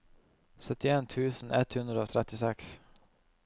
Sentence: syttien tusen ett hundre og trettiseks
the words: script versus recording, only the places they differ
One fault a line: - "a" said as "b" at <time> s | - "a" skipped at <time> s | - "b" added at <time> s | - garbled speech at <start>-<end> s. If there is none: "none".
- "og" skipped at 2.1 s